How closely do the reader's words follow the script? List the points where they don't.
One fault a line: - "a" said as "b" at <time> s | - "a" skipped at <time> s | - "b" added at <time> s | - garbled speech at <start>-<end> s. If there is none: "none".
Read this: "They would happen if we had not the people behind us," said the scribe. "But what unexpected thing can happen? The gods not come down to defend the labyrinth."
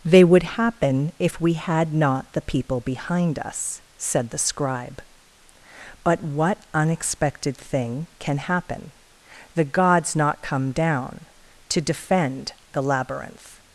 none